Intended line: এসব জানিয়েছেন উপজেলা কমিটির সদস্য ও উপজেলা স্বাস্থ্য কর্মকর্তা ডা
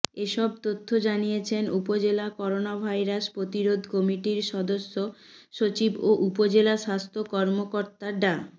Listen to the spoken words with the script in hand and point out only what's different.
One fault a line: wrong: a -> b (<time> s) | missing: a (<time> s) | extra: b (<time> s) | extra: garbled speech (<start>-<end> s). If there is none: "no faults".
extra: তথ্য (0.6 s)
extra: করোনাভাইরাস প্রতিরোধ (2.4 s)
extra: সচিব (5.5 s)